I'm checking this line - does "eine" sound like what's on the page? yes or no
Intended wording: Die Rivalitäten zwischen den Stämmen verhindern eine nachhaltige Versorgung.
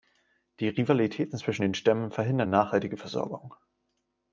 no